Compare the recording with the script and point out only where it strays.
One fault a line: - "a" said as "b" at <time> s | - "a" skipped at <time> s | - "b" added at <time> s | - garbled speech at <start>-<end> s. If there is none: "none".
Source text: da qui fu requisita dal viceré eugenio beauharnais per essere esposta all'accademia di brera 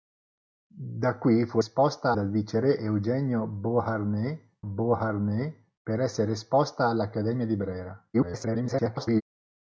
- "requisita" said as "esposta" at 1.6 s
- "beauharnais" added at 4.6 s
- garbled speech at 8.1-9.2 s